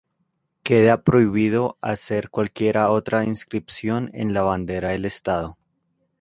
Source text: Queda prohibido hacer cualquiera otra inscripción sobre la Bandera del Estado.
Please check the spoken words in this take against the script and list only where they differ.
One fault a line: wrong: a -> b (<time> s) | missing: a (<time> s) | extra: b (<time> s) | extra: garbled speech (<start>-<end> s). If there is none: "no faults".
wrong: sobre -> en (4.1 s)